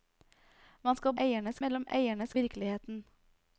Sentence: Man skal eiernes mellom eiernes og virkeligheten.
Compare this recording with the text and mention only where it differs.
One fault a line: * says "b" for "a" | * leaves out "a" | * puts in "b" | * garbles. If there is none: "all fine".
all fine